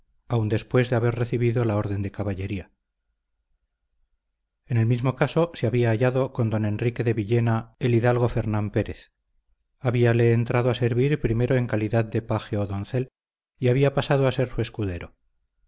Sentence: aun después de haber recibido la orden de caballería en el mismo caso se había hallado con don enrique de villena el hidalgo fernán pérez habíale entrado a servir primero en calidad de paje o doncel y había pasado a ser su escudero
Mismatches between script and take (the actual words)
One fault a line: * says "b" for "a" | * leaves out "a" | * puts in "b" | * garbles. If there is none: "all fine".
all fine